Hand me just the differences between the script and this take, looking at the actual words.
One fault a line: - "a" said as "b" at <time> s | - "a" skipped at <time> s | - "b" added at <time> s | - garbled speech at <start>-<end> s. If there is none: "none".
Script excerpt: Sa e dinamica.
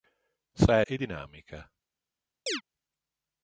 none